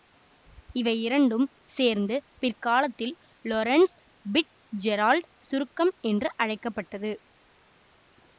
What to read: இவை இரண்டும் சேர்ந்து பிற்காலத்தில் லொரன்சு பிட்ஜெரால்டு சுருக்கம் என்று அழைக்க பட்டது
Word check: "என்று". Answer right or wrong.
right